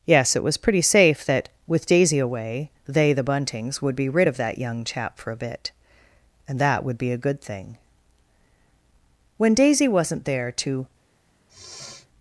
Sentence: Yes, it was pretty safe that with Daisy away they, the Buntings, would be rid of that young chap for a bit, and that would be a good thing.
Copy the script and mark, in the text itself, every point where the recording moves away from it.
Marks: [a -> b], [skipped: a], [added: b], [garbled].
Yes, it was pretty safe that with Daisy away they, the Buntings, would be rid of that young chap for a bit, and that would be a good thing. [added: When Daisy wasn't there to]